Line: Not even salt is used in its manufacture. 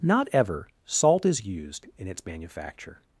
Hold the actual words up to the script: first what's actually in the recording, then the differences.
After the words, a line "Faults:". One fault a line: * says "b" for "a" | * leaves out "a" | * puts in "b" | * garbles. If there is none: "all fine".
Not ever salt is used in its manufacture.
Faults:
* says "ever" for "even"